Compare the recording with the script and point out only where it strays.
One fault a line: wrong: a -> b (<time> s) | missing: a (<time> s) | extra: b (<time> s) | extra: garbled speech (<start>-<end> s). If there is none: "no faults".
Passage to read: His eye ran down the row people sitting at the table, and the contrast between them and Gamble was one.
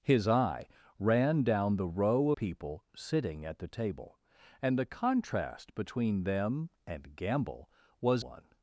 no faults